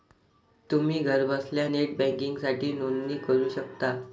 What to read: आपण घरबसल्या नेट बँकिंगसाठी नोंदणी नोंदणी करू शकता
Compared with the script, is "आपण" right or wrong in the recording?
wrong